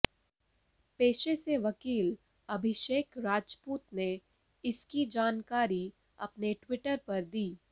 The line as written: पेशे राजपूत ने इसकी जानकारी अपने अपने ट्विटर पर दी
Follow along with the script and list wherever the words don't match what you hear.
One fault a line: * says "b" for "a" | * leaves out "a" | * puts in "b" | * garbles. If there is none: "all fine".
* puts in "से वकील अभिषेक"
* leaves out "अपने"